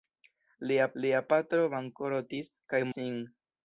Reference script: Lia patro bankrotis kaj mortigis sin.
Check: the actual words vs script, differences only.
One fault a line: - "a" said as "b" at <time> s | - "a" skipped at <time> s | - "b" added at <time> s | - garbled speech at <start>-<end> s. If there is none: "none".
- "lia" added at 1.0 s
- "mortigis" skipped at 2.8 s